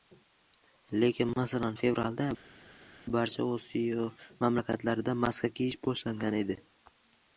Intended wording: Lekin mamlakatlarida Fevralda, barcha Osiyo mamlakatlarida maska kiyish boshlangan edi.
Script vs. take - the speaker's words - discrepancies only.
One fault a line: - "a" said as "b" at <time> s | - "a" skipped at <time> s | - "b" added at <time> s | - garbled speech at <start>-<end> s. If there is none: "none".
- "mamlakatlarida" said as "masalan" at 1.4 s